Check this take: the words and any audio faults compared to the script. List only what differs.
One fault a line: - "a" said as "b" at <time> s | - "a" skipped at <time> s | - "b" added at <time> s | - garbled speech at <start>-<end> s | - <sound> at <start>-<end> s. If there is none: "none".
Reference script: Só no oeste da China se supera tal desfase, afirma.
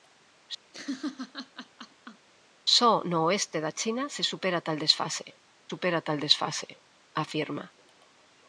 - laugh at 0.7-2.3 s
- "supera tal desfase" added at 5.7 s